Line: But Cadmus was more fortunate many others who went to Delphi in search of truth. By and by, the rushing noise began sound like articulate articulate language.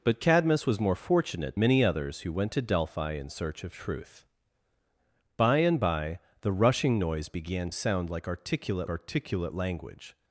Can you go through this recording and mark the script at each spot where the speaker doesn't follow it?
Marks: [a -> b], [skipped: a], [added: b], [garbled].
But Cadmus was more fortunate many others who went to Delphi in search of truth. By and by, the rushing noise began sound like articulate articulate language.